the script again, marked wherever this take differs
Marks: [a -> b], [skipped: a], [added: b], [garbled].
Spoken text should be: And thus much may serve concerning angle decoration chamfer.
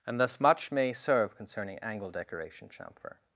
And thus much may serve concerning angle decoration chamfer.